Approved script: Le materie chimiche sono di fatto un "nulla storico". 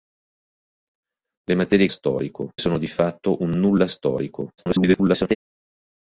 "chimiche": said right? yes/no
no